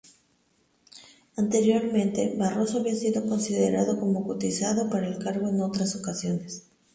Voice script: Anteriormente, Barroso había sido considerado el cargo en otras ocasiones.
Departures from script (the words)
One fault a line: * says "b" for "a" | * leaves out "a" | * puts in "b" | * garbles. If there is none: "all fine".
* puts in "como cotizado para"